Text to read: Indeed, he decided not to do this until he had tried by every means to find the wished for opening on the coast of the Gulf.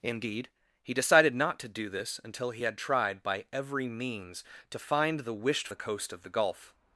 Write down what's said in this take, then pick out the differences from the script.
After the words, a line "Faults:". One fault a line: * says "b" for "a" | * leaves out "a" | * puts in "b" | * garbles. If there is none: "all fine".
Indeed, he decided not to do this until he had tried by every means to find the wished the coast of the Gulf.
Faults:
* leaves out "for opening on"